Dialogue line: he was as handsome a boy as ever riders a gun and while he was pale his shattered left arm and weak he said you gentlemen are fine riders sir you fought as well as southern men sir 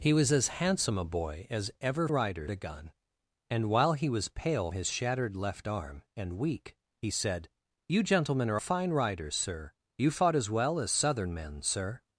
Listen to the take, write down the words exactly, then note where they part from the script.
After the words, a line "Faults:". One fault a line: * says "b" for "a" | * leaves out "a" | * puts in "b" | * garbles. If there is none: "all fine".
he was as handsome a boy as ever riders a gun and while he was pale his shattered left arm and weak he said you gentlemen are fine riders sir you fought as well as southern men sir
Faults:
all fine